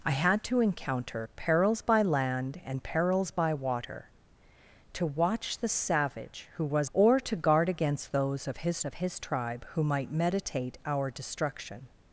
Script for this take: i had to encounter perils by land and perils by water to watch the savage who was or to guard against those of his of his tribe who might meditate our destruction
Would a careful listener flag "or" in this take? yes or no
no